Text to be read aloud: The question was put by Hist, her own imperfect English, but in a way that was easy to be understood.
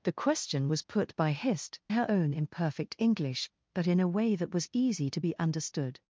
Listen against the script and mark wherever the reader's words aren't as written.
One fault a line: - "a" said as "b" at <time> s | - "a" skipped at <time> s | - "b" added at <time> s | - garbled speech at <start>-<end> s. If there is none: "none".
none